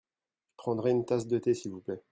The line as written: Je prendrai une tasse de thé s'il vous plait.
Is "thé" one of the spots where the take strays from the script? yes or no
no